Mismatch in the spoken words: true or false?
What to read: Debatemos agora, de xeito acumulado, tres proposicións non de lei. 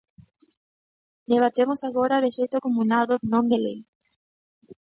true